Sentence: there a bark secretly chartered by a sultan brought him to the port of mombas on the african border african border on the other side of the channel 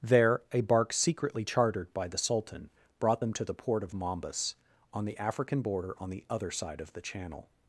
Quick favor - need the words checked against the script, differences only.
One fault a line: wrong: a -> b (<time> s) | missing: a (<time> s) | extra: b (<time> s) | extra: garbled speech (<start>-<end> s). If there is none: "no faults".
wrong: a -> the (2.1 s)
wrong: him -> them (3.2 s)
missing: african border (5.9 s)